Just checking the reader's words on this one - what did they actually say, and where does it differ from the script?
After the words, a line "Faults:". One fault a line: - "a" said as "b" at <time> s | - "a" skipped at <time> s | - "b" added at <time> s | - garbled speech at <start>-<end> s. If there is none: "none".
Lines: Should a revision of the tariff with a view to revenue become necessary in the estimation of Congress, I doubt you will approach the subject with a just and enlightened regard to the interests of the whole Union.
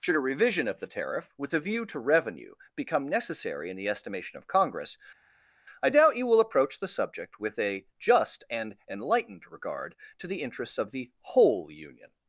Should a revision of the tariff with a view to revenue become necessary in the estimation of Congress, I doubt you will approach the subject with a just and enlightened regard to the interests of the whole Union.
Faults:
none